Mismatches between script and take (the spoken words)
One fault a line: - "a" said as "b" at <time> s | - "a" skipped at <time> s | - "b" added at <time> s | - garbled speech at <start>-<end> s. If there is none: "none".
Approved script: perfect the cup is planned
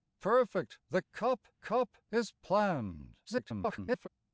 - "cup" added at 1.5 s
- garbled speech at 3.2-4.1 s